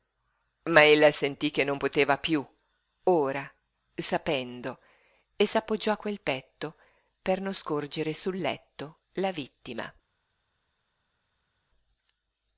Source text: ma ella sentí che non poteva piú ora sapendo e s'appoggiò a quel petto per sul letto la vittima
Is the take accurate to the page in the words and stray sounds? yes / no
no